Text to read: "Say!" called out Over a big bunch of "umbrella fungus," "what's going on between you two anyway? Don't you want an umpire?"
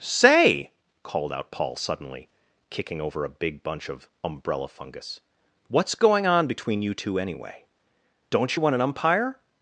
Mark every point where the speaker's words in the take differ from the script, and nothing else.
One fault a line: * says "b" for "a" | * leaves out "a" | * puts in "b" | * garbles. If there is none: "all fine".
* puts in "Paul suddenly kicking"